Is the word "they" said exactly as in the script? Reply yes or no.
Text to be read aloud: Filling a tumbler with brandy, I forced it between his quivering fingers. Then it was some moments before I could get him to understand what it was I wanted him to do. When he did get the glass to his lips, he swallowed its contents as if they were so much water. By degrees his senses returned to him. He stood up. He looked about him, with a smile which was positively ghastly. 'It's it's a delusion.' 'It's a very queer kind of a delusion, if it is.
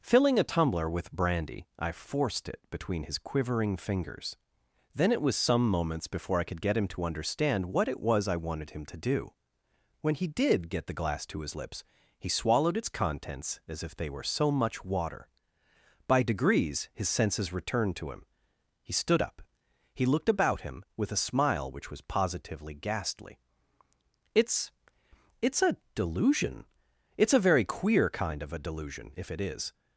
yes